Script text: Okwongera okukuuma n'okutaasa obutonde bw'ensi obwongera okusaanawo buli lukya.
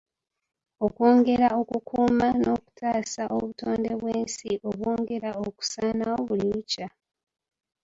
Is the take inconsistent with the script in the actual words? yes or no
no